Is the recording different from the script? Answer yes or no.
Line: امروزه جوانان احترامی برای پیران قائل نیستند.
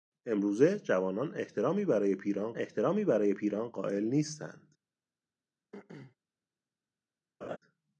yes